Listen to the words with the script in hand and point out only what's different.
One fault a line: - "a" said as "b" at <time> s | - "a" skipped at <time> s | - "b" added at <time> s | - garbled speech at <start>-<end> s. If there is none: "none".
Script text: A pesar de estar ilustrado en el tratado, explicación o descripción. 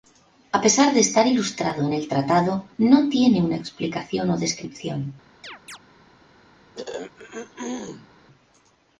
- "no tiene una" added at 2.8 s